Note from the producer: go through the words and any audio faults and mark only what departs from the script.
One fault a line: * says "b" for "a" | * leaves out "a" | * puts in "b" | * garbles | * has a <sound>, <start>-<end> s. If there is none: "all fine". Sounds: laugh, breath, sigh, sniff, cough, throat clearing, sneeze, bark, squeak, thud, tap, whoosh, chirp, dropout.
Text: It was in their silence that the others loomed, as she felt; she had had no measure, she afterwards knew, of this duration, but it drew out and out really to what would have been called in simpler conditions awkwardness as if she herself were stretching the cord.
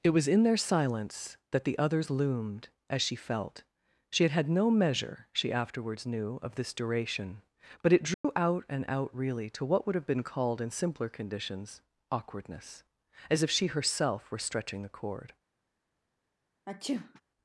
* has a dropout, 8.1-8.2 s
* has a sneeze, 16.7-17.2 s